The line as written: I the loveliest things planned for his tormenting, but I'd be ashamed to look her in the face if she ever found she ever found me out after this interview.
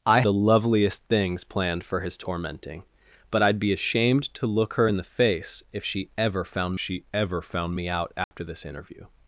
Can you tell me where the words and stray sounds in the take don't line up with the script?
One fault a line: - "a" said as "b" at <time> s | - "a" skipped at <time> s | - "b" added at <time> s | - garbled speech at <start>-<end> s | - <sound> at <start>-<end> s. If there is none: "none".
- dropout at 8.2-8.3 s